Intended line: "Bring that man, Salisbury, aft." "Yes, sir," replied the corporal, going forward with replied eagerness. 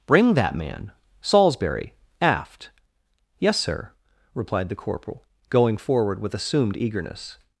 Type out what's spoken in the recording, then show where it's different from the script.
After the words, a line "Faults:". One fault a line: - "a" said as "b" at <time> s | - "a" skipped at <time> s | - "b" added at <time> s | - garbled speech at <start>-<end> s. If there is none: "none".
"Bring that man, Salisbury, aft." "Yes, sir," replied the corporal, going forward with assumed eagerness.
Faults:
- "replied" said as "assumed" at 6.3 s